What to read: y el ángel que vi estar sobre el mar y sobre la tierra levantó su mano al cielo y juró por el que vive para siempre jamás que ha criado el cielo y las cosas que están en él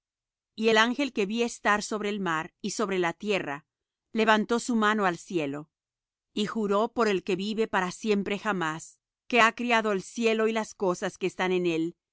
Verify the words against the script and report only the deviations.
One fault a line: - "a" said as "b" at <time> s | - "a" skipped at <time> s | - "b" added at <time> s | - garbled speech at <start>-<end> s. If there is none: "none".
none